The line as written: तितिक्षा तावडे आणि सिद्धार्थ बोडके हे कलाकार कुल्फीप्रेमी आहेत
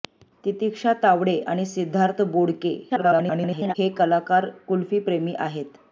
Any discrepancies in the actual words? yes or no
yes